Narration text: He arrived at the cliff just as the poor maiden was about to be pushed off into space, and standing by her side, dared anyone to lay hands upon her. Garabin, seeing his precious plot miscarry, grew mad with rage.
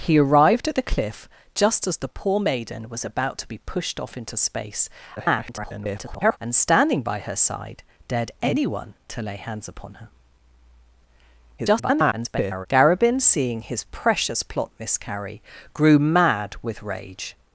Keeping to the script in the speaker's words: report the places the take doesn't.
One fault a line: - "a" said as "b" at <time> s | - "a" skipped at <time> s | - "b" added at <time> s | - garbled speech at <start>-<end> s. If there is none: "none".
- garbled speech at 5.2-6.4 s
- garbled speech at 11.6-12.7 s